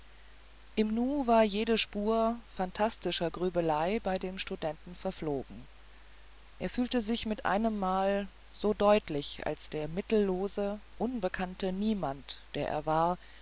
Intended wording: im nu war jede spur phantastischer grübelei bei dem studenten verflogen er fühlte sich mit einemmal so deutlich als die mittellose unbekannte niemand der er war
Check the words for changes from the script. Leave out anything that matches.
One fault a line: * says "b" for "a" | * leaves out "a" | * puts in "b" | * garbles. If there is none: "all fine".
* says "der" for "die"